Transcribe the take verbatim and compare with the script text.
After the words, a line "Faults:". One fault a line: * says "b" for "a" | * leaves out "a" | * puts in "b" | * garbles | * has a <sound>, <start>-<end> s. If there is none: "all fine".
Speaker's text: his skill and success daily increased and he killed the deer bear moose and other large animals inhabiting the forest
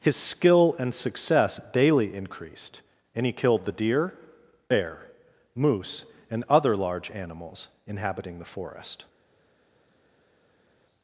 his skill and success daily increased and he killed the deer bear moose and other large animals inhabiting the forest
Faults:
all fine